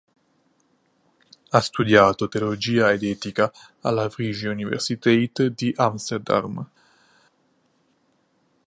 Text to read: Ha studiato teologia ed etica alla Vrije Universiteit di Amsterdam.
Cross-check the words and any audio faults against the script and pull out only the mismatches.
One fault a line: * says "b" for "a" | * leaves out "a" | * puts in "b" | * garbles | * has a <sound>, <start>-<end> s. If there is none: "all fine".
all fine